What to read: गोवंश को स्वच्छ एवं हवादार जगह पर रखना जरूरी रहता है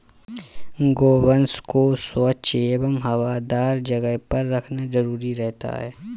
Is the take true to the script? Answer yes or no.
yes